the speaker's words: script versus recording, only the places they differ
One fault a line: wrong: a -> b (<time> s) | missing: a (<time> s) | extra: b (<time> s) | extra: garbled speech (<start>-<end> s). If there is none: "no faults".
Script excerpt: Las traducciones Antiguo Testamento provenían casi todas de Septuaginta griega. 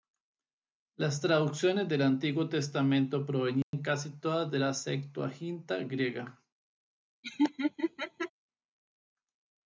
extra: del (1.9 s)
extra: la (4.6 s)